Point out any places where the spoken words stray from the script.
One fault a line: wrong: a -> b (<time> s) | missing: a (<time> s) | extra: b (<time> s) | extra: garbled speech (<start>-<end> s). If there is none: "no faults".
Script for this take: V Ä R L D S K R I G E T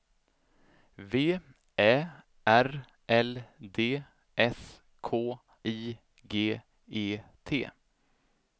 missing: R (5.1 s)